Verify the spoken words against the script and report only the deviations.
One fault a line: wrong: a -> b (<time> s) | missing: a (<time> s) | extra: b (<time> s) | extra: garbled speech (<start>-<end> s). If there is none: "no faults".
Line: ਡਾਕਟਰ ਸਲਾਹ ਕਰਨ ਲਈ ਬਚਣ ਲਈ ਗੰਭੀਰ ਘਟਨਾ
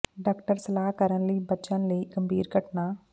no faults